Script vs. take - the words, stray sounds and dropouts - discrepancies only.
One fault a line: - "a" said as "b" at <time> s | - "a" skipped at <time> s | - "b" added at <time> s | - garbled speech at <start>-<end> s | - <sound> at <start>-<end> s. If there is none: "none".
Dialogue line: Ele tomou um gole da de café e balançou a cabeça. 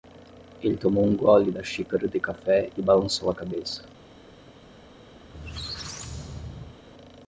- "xícara" added at 1.6 s
- squeak at 5.2-6.8 s